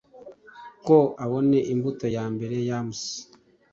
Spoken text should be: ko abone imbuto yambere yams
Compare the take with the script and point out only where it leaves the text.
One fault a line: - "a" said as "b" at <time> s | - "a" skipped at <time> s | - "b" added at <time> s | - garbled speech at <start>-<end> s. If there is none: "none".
none